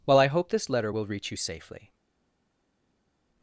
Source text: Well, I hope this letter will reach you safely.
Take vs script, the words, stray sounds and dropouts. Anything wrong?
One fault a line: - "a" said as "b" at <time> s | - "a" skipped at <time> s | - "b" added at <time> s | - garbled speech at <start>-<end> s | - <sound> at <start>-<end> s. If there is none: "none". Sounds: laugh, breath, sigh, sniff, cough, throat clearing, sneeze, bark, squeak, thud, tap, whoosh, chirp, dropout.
none